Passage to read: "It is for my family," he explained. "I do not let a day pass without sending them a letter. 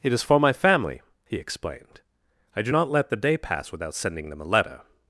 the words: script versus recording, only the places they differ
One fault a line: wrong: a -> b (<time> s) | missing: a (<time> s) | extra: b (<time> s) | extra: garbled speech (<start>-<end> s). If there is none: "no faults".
wrong: a -> the (3.1 s)